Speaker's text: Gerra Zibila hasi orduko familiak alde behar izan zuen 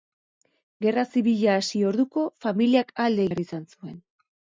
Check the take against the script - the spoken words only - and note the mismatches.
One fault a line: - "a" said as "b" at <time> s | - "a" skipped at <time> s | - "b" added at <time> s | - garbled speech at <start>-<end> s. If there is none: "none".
none